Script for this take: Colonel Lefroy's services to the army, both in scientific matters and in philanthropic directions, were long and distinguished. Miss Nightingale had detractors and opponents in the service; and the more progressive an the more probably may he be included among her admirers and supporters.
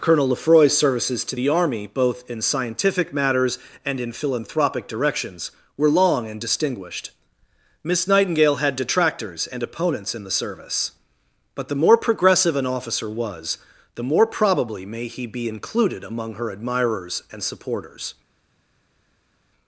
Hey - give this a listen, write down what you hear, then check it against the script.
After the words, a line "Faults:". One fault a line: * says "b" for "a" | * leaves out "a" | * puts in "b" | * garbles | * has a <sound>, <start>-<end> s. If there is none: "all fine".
Colonel Lefroy's services to the army, both in scientific matters and in philanthropic directions, were long and distinguished. Miss Nightingale had detractors and opponents in the service; but the more progressive an officer was, the more probably may he be included among her admirers and supporters.
Faults:
* says "but" for "and"
* puts in "officer was"